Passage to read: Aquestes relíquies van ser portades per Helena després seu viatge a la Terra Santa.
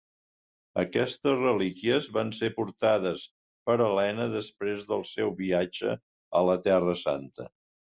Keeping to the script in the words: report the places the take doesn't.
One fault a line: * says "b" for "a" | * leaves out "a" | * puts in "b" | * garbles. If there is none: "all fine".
* puts in "del"